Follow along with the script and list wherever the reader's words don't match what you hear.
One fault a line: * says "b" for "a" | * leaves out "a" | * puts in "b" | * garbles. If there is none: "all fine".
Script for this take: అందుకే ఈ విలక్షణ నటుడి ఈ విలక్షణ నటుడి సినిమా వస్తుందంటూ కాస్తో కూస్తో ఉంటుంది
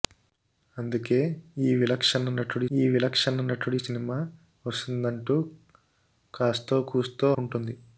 all fine